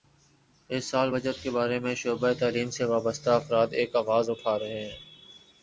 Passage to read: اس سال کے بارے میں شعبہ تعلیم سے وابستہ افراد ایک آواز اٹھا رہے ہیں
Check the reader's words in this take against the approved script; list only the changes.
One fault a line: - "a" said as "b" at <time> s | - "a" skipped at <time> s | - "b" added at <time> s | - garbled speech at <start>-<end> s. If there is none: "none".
- "بجٹ" added at 1.1 s